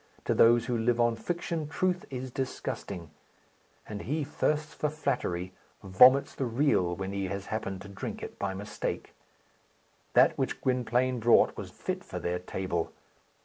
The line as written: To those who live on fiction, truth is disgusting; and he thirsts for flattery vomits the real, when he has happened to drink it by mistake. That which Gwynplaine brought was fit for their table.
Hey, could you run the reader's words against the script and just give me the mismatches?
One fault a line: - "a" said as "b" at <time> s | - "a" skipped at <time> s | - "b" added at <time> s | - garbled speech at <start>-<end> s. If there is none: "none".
none